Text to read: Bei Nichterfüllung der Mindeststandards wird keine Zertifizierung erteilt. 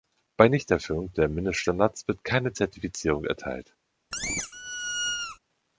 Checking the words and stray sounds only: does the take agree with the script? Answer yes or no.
no